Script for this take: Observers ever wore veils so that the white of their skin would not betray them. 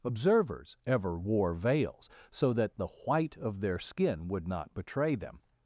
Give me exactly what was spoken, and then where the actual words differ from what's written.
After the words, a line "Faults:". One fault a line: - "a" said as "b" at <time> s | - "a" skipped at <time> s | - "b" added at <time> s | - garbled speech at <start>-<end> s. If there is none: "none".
Observers ever wore veils so that the white of their skin would not betray them.
Faults:
none